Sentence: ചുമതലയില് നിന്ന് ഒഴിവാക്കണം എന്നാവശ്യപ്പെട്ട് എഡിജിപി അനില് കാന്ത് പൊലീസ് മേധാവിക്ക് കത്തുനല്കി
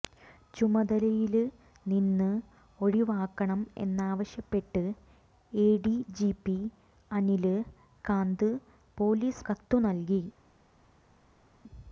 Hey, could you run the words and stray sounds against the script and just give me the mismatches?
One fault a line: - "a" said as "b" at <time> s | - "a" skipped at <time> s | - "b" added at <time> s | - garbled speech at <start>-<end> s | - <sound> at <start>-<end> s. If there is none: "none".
- "മേധാവിക്ക്" skipped at 9.5 s